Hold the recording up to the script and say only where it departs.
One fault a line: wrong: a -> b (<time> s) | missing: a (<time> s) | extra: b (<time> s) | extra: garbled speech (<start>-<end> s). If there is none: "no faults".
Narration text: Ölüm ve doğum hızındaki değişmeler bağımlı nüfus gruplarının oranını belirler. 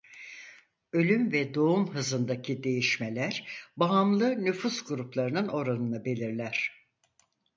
no faults